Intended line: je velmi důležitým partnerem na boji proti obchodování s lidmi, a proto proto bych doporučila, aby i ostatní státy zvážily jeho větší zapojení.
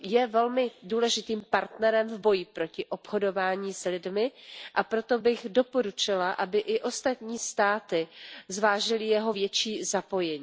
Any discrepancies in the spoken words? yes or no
yes